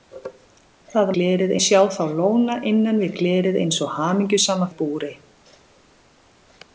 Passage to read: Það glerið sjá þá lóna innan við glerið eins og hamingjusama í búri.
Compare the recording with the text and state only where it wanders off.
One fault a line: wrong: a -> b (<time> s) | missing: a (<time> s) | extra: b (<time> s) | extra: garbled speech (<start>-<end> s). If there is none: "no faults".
no faults